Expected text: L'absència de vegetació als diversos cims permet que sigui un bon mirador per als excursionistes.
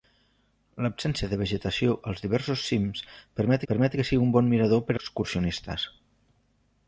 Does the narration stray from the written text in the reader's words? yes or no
yes